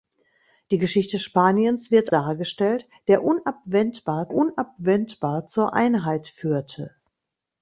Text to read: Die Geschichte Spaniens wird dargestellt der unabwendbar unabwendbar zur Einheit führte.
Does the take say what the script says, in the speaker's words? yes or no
yes